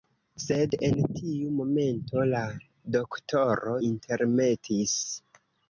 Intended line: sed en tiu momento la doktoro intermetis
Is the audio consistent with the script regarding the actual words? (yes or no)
yes